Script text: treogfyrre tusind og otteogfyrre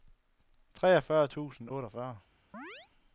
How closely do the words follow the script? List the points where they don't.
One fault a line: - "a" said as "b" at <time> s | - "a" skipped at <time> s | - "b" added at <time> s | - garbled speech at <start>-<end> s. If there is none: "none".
- "og" skipped at 1.7 s